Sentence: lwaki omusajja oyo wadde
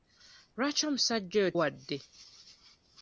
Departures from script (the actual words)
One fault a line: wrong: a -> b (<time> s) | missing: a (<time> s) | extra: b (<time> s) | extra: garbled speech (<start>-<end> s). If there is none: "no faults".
no faults